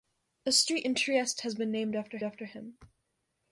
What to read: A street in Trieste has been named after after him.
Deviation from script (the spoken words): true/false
false